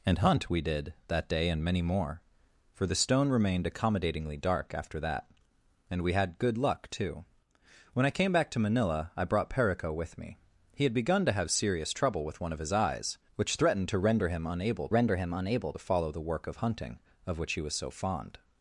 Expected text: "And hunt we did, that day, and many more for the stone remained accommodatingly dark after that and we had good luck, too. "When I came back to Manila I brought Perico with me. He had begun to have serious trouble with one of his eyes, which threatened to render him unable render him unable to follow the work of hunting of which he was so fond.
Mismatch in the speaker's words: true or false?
false